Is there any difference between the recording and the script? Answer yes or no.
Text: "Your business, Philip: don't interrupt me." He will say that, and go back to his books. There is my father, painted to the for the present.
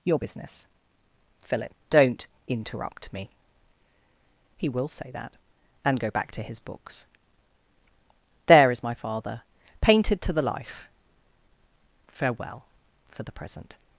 yes